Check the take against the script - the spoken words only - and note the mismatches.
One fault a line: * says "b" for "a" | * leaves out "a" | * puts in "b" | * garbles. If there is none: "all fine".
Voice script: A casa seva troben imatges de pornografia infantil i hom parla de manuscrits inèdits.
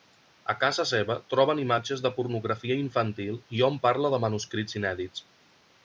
all fine